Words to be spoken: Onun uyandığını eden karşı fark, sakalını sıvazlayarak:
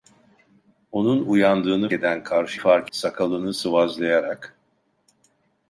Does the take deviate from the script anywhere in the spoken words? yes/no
no